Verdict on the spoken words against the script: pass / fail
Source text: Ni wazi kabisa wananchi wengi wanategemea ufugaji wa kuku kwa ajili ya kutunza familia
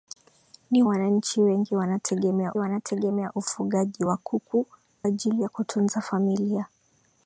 fail